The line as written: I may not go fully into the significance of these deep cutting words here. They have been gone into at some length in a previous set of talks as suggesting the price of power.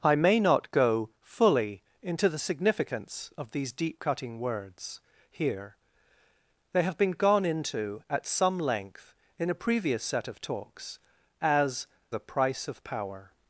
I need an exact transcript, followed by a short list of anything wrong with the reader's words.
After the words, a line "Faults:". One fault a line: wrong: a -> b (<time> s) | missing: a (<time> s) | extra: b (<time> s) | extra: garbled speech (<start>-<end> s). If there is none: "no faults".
I may not go fully into the significance of these deep cutting words here. They have been gone into at some length in a previous set of talks as the price of power.
Faults:
missing: suggesting (11.9 s)